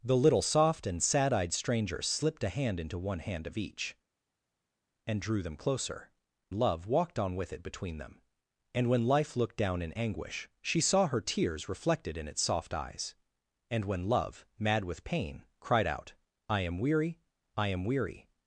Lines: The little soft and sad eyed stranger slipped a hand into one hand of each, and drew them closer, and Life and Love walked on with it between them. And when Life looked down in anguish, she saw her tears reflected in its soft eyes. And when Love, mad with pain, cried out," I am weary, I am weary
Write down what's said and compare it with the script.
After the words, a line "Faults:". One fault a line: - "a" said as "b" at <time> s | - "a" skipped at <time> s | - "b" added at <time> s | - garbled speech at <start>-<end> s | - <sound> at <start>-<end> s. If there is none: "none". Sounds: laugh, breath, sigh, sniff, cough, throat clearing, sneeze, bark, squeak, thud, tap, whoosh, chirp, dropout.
The little soft and sad eyed stranger slipped a hand into one hand of each, and drew them closer, Love walked on with it between them. And when Life looked down in anguish, she saw her tears reflected in its soft eyes. And when Love, mad with pain, cried out," I am weary, I am weary
Faults:
- "and Life and" skipped at 6.1 s